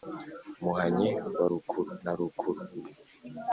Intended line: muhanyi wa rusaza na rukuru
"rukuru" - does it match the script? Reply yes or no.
yes